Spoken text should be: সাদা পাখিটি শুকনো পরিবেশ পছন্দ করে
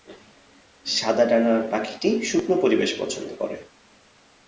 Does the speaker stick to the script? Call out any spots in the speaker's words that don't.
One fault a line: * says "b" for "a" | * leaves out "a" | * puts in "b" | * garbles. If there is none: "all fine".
* puts in "ডানার"